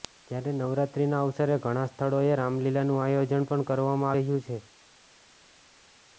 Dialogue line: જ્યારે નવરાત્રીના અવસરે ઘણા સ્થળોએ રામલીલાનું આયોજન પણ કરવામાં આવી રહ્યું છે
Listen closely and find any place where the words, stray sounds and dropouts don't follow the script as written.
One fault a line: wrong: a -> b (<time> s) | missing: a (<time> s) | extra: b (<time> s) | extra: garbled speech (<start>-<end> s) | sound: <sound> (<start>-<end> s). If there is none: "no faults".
missing: આવી (4.2 s)